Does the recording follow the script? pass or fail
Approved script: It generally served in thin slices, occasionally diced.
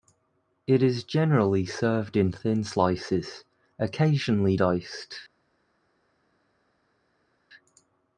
fail